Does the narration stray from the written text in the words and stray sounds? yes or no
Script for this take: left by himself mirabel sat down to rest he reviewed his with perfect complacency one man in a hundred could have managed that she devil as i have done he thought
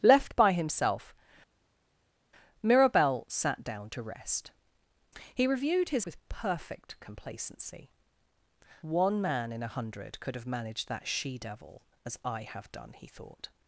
no